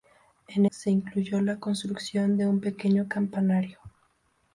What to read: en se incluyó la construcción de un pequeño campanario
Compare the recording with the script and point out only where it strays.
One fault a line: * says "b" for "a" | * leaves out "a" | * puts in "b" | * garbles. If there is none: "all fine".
all fine